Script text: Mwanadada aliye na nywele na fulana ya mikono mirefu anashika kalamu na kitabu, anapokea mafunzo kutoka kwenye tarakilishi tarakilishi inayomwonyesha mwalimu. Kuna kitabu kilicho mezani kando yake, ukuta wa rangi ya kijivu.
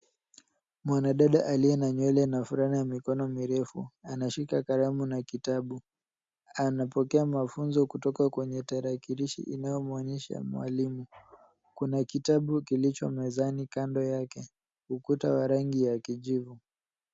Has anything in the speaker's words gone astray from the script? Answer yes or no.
yes